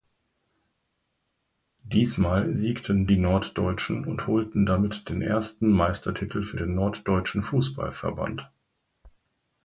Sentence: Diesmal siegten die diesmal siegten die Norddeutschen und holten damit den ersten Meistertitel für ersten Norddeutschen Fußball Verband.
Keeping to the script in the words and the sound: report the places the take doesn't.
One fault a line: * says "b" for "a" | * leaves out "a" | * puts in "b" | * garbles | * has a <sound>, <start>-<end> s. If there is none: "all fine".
* leaves out "diesmal siegten die"
* says "den" for "ersten"